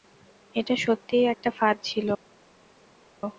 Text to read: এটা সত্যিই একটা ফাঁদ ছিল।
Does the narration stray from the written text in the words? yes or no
no